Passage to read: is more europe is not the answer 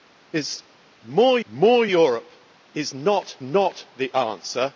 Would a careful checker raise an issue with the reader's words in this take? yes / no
yes